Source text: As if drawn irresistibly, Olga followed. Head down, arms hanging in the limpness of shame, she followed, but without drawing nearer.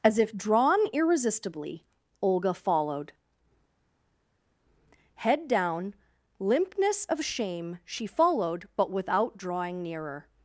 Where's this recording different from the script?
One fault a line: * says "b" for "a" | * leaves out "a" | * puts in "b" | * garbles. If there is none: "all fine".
* leaves out "arms hanging in the"